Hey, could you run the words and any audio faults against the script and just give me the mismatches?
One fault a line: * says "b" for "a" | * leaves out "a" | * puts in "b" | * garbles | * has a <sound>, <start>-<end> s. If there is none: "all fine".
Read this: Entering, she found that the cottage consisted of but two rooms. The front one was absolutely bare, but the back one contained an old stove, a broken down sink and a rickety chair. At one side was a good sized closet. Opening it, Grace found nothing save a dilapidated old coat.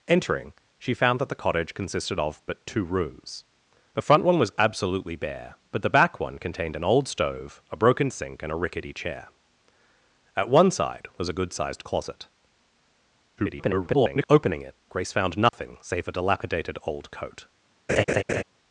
* leaves out "down"
* garbles
* has a dropout, 15.5-15.5 s
* has a laugh, 17.9-18.4 s